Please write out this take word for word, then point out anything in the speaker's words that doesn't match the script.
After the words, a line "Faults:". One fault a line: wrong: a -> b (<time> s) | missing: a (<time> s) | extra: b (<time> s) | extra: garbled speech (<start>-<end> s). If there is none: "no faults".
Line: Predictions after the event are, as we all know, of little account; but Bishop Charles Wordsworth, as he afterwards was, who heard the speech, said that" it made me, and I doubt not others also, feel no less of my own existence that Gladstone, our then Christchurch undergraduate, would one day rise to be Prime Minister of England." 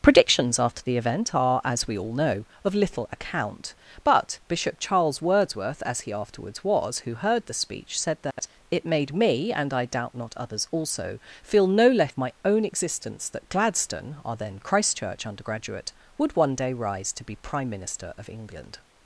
Predictions after the event are, as we all know, of little account; but Bishop Charles Wordsworth, as he afterwards was, who heard the speech, said that" it made me, and I doubt not others also, feel no less of my own existence that Gladstone, our then Christchurch undergraduate, would one day rise to be Prime Minister of England."
Faults:
no faults